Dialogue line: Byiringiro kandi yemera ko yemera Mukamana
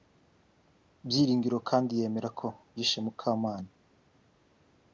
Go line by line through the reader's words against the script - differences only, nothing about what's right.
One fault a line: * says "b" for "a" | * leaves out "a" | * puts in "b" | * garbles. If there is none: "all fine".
* says "yishe" for "yemera"